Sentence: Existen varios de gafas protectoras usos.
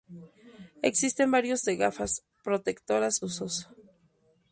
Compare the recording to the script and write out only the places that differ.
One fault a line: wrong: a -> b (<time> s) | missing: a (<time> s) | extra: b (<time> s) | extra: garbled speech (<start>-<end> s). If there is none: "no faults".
no faults